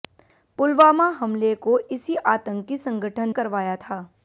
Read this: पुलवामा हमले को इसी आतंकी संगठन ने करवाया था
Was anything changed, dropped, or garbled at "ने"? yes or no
yes